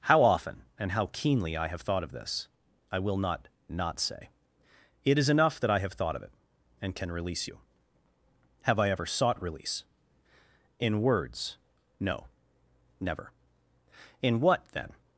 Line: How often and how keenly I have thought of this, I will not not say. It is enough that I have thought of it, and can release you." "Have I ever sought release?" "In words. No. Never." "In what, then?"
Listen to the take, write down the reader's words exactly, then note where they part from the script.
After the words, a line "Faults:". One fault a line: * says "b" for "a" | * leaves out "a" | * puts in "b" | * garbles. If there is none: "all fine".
How often and how keenly I have thought of this, I will not not say. It is enough that I have thought of it, and can release you." "Have I ever sought release?" "In words. No. Never." "In what, then?"
Faults:
all fine